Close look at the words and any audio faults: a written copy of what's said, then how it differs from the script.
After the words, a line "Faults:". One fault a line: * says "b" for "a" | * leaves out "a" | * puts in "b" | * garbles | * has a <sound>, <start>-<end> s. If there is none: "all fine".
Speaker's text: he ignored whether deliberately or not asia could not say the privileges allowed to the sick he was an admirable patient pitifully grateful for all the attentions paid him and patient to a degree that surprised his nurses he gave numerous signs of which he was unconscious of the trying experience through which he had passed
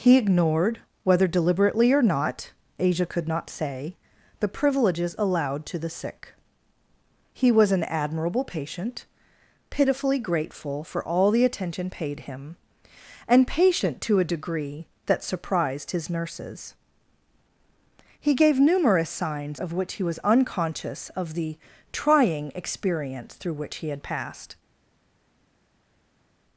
he ignored whether deliberately or not asia could not say the privileges allowed to the sick he was an admirable patient pitifully grateful for all the attention paid him and patient to a degree that surprised his nurses he gave numerous signs of which he was unconscious of the trying experience through which he had passed
Faults:
* says "attention" for "attentions"